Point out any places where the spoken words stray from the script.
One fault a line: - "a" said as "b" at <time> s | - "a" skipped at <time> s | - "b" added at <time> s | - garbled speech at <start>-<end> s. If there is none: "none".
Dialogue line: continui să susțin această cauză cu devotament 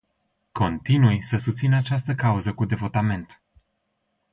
none